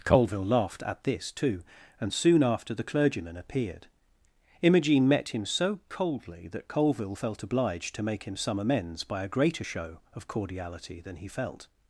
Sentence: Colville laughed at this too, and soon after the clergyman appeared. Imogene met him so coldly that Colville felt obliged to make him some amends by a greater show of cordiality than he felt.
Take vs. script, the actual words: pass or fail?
pass